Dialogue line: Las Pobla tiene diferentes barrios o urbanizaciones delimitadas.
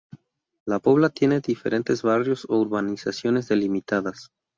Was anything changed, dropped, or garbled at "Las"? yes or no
yes